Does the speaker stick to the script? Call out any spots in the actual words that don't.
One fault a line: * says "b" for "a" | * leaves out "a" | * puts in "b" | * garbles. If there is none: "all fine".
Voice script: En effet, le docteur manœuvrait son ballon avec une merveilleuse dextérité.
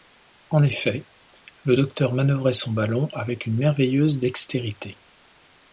all fine